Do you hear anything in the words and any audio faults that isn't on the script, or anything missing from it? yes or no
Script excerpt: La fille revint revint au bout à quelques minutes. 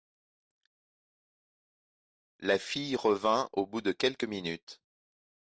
yes